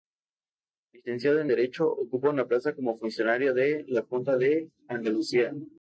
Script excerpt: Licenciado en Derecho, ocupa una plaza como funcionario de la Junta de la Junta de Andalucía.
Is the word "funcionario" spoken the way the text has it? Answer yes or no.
yes